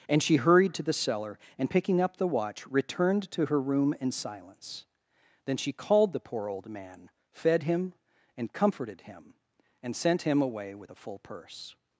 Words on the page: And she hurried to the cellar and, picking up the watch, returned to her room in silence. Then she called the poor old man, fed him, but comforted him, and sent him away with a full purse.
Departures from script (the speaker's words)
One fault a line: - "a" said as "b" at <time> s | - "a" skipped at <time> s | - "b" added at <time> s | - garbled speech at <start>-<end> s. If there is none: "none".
- "but" said as "and" at 8.4 s